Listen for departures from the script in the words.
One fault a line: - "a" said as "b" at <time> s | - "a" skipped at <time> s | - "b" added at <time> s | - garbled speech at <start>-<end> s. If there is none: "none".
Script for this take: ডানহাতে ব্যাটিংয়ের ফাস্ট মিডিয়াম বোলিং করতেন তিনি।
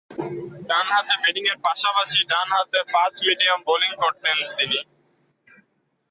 - "পাশাপাশি ডানহাতে" added at 1.6 s